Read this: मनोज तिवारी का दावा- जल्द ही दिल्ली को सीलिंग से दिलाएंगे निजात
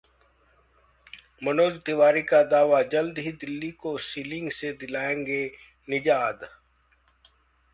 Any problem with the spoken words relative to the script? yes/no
no